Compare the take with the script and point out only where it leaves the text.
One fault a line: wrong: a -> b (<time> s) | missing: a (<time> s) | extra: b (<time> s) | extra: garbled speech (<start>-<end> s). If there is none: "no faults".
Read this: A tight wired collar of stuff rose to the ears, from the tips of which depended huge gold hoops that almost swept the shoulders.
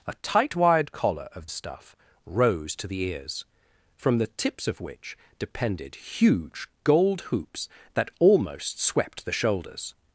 no faults